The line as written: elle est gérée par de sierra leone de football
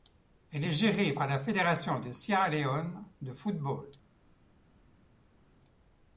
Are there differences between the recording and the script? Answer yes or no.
yes